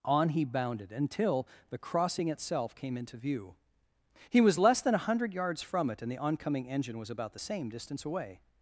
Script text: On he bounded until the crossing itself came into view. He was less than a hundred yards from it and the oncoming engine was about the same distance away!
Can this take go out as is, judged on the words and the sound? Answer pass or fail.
pass